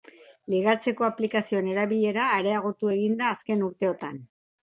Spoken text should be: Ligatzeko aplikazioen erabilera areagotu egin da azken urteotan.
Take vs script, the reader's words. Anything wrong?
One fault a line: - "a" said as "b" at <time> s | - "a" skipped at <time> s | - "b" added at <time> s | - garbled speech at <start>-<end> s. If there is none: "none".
none